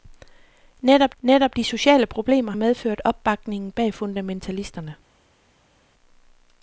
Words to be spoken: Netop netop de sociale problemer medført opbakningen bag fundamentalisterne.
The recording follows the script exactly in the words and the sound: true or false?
true